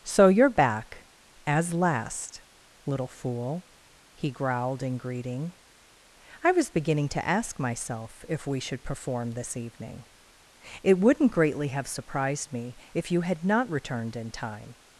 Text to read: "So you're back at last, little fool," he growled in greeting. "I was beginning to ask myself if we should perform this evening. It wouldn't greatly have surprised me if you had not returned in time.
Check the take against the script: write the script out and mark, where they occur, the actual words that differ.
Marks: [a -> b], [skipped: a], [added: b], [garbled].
"So you're back [at -> as] last, little fool," he growled in greeting. "I was beginning to ask myself if we should perform this evening. It wouldn't greatly have surprised me if you had not returned in time.